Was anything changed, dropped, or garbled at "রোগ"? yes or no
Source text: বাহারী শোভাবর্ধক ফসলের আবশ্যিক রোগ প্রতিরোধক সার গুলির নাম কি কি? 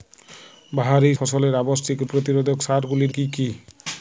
yes